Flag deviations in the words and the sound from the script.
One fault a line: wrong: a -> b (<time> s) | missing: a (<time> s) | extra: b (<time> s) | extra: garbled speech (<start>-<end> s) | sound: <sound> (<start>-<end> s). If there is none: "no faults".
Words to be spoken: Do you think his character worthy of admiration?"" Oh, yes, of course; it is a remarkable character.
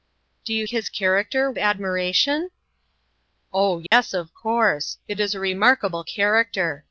missing: think (0.7 s)
missing: worthy of (1.5 s)
sound: dropout (3.9-3.9 s)